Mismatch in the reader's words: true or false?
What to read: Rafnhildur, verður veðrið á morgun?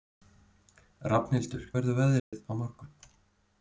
false